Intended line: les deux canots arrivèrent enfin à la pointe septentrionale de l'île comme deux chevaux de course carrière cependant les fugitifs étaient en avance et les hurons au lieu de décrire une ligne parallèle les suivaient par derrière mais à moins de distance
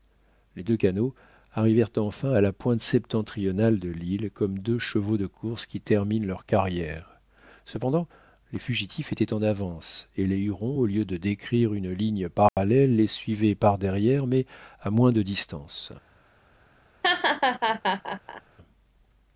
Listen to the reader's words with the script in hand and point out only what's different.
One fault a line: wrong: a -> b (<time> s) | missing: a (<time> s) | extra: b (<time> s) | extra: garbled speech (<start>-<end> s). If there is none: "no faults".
extra: qui terminent leur (5.6 s)